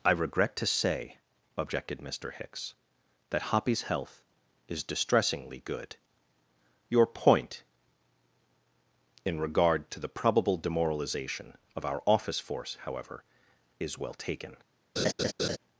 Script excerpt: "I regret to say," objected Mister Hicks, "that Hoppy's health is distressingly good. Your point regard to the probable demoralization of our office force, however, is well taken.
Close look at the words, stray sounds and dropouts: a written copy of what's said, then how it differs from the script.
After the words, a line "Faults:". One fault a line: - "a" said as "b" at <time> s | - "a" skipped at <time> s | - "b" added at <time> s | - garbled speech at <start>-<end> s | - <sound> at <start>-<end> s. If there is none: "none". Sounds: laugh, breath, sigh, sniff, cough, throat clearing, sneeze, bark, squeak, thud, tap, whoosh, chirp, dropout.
"I regret to say," objected Mister Hicks, "that Hoppy's health is distressingly good. Your point in regard to the probable demoralization of our office force, however, is well taken.
Faults:
- "in" added at 9.2 s
- laugh at 15.0-15.6 s